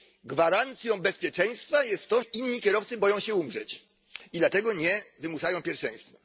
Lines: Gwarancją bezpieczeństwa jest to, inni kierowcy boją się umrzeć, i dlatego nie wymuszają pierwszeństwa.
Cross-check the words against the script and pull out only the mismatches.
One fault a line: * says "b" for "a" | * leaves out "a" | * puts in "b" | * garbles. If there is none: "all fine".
all fine